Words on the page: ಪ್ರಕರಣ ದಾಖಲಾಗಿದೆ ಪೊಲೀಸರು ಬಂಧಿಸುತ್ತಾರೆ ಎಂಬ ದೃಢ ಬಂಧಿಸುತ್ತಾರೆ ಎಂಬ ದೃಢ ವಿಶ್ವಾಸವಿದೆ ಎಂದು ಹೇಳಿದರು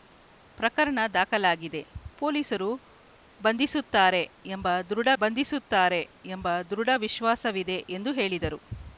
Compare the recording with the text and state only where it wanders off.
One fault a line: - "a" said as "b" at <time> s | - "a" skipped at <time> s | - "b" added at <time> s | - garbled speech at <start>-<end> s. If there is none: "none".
none